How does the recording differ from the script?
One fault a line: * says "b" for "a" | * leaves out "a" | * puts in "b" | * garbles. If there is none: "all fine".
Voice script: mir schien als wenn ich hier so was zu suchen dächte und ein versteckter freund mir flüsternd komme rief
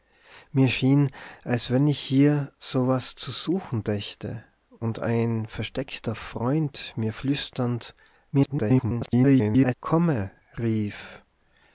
* garbles